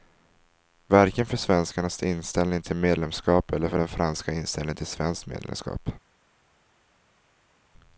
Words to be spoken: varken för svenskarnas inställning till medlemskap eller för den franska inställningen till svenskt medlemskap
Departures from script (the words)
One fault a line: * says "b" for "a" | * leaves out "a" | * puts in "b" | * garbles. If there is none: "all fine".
all fine